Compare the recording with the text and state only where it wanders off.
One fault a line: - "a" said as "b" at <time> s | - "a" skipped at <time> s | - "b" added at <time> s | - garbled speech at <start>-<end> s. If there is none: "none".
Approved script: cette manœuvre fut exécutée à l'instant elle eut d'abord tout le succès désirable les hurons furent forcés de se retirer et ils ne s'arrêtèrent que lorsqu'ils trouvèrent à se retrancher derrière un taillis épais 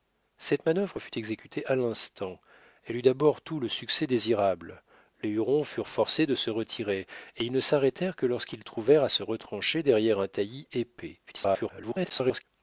- garbled speech at 11.3-12.4 s